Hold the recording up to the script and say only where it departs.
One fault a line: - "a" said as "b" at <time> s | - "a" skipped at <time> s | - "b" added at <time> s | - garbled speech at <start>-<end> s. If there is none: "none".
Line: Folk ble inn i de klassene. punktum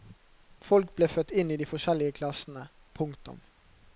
- "født" added at 1.1 s
- "forskjellige" added at 1.7 s